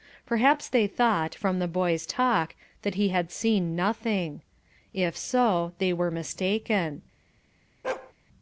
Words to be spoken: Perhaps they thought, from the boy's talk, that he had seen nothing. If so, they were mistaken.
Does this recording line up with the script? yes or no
yes